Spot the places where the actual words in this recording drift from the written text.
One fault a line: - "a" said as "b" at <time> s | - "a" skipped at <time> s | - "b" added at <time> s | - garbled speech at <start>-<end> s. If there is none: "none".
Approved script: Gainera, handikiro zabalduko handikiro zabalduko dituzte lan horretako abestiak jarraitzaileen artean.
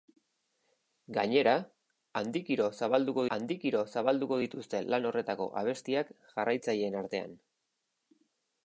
none